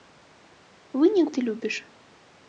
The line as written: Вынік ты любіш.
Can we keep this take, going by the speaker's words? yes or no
yes